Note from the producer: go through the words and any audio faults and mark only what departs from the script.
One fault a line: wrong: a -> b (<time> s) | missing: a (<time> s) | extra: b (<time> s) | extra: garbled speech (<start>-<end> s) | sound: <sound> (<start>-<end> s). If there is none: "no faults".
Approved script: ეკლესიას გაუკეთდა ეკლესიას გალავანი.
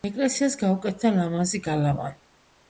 wrong: ეკლესიას -> ლამაზი (1.2 s)